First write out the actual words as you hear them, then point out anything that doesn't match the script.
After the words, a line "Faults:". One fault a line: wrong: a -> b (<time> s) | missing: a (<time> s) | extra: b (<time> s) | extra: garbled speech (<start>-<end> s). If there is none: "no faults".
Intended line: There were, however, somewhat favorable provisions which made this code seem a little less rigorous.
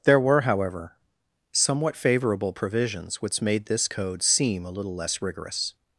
There were, however, somewhat favorable provisions which made this code seem a little less rigorous.
Faults:
no faults